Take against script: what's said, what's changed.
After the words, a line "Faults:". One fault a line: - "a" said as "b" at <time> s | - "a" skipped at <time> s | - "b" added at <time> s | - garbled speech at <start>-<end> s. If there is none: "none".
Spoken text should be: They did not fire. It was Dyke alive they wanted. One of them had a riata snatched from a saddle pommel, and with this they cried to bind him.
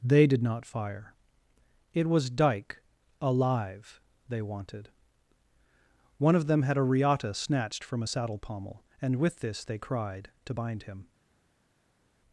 They did not fire. It was Dyke alive they wanted. One of them had a riata snatched from a saddle pommel, and with this they cried to bind him.
Faults:
none